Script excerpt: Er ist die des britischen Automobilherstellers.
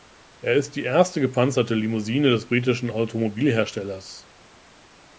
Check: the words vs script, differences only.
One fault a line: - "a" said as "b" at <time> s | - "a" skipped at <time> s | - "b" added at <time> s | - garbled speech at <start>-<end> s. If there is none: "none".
- "erste gepanzerte Limousine" added at 0.8 s